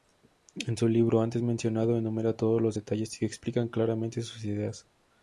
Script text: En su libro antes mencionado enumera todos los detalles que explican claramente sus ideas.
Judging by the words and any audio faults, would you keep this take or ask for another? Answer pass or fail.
pass